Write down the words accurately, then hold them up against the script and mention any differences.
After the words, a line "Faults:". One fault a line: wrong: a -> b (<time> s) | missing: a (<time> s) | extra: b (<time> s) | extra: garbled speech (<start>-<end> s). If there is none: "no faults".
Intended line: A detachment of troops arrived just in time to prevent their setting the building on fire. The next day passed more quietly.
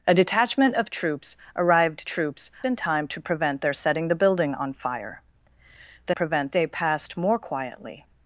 A detachment of troops arrived troops in time to prevent their setting the building on fire. The prevent day passed more quietly.
Faults:
wrong: just -> troops (2.0 s)
wrong: next -> prevent (6.1 s)